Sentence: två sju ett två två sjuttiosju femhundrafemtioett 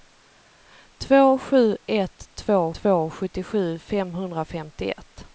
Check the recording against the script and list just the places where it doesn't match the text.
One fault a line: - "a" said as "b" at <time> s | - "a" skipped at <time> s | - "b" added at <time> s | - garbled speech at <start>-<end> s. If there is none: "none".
none